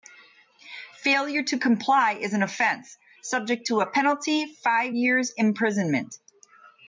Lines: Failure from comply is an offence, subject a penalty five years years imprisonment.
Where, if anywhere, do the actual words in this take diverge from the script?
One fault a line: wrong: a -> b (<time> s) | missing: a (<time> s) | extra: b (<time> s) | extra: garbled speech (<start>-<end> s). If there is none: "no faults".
wrong: from -> to (1.4 s)
extra: to (3.7 s)
missing: years (5.3 s)